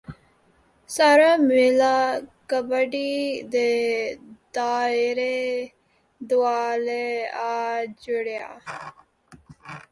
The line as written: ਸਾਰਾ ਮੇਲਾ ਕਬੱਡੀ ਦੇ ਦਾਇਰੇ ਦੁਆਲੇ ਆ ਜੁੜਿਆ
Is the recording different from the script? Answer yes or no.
no